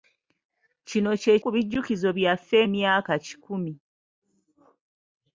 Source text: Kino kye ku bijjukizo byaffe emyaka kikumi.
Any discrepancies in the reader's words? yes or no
no